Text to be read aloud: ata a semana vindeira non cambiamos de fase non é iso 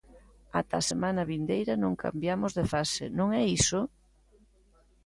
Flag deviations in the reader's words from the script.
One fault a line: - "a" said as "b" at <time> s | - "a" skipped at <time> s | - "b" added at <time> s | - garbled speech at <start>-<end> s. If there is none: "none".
none